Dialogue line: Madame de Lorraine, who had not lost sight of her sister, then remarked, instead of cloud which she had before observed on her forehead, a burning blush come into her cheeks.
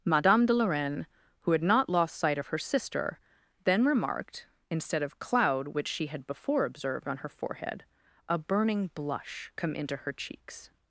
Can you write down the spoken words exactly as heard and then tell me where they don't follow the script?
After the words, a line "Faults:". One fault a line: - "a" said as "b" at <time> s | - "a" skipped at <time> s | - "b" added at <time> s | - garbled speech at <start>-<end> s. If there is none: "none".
Madame de Lorraine, who had not lost sight of her sister, then remarked, instead of cloud which she had before observed on her forehead, a burning blush come into her cheeks.
Faults:
none